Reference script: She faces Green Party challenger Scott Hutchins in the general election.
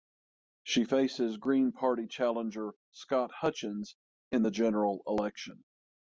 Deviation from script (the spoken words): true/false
false